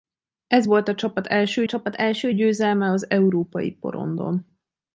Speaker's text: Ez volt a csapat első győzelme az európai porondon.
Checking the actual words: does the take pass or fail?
fail